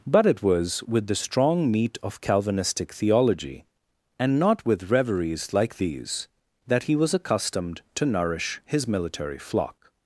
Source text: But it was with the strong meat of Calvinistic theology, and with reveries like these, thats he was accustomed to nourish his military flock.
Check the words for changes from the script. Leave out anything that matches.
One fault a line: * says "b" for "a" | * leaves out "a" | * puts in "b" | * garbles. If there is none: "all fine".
* puts in "not"
* says "that" for "thats"